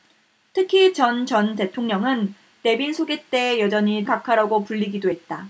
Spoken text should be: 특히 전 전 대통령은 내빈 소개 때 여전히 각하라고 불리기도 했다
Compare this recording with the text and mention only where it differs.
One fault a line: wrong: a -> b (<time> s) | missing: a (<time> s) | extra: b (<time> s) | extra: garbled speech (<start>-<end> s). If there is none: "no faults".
no faults